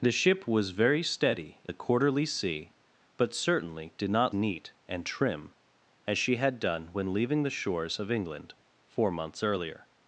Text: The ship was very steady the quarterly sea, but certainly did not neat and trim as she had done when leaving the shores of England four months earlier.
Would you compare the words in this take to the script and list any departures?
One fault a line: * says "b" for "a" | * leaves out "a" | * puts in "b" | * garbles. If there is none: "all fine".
all fine